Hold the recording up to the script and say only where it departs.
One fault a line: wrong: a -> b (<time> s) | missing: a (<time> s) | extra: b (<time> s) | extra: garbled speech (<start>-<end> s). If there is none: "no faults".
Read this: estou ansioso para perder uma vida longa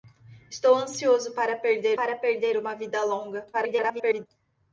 extra: para perder (1.9 s)
extra: garbled speech (3.5-4.3 s)